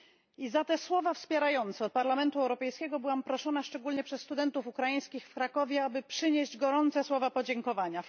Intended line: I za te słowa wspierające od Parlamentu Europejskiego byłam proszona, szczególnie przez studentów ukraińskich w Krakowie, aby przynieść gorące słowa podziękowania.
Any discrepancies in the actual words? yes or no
no